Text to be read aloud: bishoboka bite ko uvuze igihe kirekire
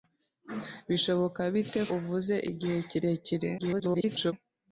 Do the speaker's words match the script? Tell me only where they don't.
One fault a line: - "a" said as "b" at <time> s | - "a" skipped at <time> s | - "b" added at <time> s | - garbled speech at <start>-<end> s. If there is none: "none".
- "ko" skipped at 1.8 s
- garbled speech at 3.6-4.3 s